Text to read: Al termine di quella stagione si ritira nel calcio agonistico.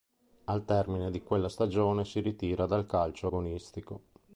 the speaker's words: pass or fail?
fail